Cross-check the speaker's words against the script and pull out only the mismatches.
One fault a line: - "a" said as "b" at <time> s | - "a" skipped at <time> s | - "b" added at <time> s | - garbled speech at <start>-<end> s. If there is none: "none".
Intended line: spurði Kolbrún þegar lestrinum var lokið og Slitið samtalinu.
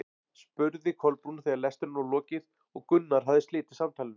- "Gunnar hafði" added at 2.9 s